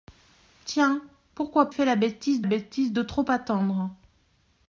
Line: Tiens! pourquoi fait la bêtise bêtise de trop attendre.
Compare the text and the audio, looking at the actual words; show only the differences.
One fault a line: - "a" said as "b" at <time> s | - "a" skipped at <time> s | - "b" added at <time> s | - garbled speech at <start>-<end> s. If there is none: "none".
none